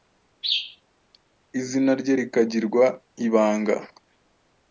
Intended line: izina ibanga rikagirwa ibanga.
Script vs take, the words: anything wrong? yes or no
yes